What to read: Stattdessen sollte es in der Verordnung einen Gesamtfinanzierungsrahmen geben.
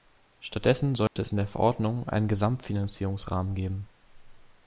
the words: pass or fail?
pass